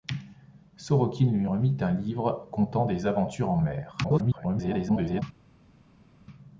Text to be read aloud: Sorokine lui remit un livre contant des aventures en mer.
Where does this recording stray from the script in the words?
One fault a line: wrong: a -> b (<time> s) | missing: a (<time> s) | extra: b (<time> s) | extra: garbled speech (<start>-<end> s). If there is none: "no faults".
extra: garbled speech (4.0-5.2 s)